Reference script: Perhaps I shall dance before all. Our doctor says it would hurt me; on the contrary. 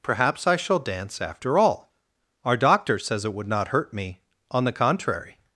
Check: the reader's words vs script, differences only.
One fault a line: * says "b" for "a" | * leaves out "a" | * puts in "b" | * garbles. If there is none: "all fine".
* says "after" for "before"
* puts in "not"